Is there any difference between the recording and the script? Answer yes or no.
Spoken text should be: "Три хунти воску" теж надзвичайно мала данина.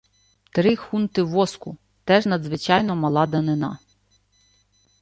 no